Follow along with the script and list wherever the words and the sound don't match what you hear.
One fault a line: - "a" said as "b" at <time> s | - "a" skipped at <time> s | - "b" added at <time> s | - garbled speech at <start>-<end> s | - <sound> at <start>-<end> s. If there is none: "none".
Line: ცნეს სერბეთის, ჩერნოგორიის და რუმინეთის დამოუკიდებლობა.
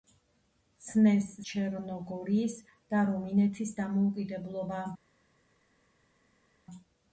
- "სერბეთის" skipped at 1.3 s